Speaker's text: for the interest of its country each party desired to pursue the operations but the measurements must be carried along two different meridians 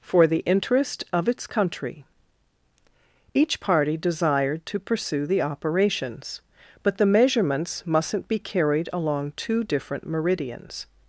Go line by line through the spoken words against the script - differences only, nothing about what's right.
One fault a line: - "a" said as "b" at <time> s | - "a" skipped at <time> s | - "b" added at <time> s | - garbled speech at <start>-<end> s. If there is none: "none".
- "must" said as "mustn't" at 7.9 s